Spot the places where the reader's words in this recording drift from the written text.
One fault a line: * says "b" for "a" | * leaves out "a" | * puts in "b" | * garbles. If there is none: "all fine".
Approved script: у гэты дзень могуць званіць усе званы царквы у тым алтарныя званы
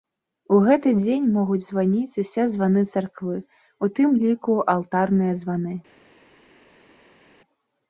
* puts in "ліку"